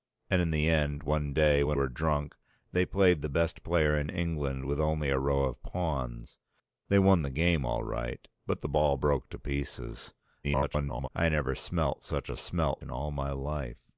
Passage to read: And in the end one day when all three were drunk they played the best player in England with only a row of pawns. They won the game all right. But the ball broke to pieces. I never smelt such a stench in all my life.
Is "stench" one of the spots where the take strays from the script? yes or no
yes